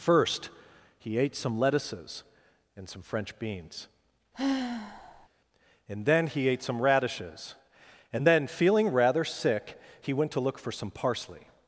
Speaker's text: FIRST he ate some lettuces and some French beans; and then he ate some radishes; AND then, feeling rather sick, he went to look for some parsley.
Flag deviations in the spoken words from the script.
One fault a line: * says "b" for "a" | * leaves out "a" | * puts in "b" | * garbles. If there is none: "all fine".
all fine